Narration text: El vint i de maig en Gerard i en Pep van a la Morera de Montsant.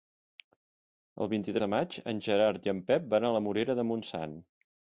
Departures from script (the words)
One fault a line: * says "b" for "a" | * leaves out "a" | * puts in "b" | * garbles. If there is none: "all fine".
all fine